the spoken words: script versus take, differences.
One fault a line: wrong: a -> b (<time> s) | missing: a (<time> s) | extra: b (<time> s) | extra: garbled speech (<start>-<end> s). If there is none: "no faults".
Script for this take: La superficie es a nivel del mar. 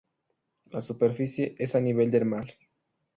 no faults